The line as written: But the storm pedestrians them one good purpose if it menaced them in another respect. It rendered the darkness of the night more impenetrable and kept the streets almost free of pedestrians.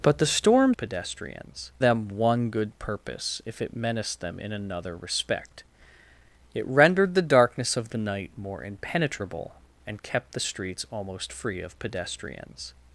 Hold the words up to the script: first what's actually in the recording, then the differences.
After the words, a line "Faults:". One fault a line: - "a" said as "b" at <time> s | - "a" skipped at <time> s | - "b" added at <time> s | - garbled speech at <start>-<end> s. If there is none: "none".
But the storm pedestrians them one good purpose if it menaced them in another respect. It rendered the darkness of the night more impenetrable and kept the streets almost free of pedestrians.
Faults:
none